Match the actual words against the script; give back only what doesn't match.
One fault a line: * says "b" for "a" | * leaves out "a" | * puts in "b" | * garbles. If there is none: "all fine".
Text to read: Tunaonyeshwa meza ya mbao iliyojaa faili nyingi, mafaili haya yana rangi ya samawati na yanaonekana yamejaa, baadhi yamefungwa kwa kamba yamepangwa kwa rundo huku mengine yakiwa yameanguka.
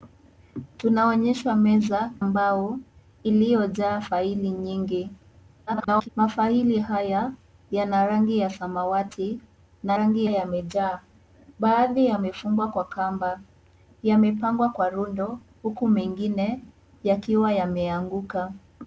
* leaves out "ya"
* garbles
* says "rangi" for "yanaonekana"